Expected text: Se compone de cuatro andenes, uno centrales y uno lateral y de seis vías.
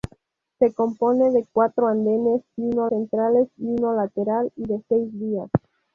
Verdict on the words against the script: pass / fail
pass